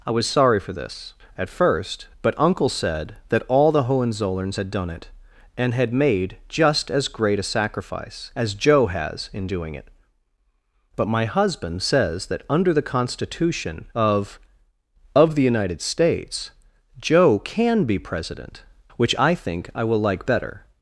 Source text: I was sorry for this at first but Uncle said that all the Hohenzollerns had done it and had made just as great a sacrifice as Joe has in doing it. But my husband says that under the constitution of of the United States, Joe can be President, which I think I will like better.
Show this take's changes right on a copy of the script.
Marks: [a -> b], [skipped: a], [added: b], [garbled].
I was sorry for this at first but Uncle said that all the Hohenzollerns had done it and had made just as great a sacrifice as Joe has in doing it. But my husband says that under the constitution of of the United States, Joe can be President, which I think I will like better.